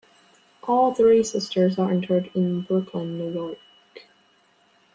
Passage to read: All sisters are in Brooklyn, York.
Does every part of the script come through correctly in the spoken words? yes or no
no